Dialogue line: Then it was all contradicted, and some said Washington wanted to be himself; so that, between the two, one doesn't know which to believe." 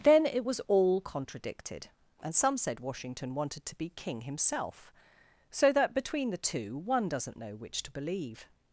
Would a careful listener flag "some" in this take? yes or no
no